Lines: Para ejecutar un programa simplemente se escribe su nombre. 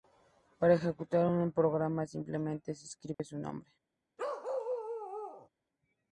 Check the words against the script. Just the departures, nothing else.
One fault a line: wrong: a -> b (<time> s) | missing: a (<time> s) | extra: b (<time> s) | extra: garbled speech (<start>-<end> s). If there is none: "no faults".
no faults